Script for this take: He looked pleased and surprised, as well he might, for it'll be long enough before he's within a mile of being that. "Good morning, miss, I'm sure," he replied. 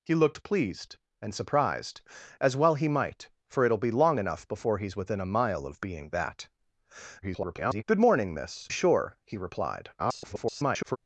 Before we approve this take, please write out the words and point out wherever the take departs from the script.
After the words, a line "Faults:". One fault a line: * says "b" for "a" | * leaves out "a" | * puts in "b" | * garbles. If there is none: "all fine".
He looked pleased and surprised, as well he might, for it'll be long enough before he's within a mile of being that. [garbled] "Good morning, miss, Sure," he replied. [garbled]
Faults:
* garbles
* leaves out "I'm"
* garbles